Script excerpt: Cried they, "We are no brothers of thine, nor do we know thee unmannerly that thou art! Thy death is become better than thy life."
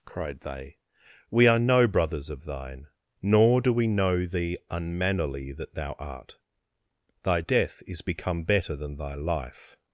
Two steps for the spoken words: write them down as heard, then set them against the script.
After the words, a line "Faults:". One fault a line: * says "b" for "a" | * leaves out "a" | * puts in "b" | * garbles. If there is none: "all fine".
Cried they, "We are no brothers of thine, nor do we know thee unmannerly that thou art! Thy death is become better than thy life."
Faults:
all fine